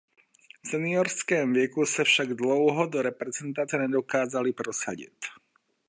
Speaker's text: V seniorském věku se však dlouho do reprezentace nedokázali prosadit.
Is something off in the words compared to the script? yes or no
no